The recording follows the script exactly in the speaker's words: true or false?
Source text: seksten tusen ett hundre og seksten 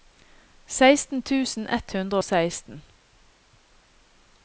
true